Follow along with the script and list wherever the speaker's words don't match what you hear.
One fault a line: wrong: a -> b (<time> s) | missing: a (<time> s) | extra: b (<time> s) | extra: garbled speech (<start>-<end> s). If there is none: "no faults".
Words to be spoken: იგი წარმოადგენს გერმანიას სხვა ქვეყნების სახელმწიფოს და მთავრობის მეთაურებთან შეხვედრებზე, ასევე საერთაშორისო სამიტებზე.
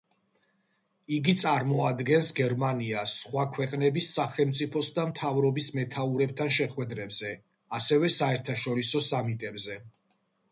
no faults